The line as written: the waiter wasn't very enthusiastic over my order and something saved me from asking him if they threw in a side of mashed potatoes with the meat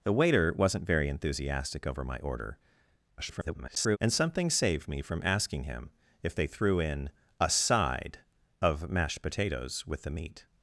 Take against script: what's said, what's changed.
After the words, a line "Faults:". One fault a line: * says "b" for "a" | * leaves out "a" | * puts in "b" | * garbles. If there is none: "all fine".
the waiter wasn't very enthusiastic over my order [garbled] and something saved me from asking him if they threw in a side of mashed potatoes with the meat
Faults:
* garbles